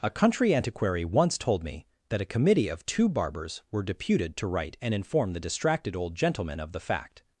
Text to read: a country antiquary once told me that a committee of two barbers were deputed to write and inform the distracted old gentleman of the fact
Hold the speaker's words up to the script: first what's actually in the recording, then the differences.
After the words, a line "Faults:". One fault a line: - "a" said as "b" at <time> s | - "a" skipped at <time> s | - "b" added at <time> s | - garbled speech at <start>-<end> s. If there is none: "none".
a country antiquary once told me that a committee of two barbers were deputed to write and inform the distracted old gentleman of the fact
Faults:
none